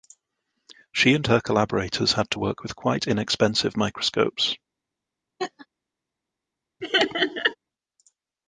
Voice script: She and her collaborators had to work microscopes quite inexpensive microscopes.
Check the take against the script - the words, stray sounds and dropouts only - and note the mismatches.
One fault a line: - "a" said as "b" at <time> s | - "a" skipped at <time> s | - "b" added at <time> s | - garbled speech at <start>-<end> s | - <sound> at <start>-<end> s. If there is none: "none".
- "microscopes" said as "with" at 2.6 s
- laugh at 5.4-5.7 s
- laugh at 6.8-7.6 s